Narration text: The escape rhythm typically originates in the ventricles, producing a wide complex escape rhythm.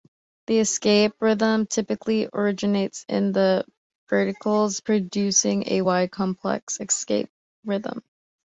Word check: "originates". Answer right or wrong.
right